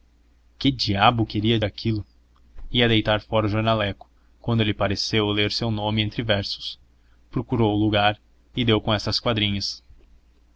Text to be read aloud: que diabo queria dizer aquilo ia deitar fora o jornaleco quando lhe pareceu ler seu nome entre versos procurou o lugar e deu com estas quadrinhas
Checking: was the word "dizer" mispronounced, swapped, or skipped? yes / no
yes